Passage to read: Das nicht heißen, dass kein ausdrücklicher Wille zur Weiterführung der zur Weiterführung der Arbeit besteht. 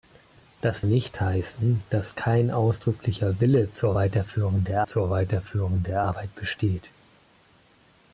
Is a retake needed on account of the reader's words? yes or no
no